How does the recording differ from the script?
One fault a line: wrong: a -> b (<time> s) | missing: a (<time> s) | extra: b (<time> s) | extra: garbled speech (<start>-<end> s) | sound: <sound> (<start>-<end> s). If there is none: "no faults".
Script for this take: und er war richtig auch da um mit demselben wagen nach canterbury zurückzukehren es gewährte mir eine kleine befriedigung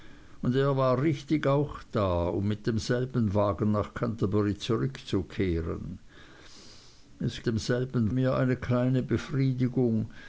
wrong: gewährte -> demselben (7.4 s)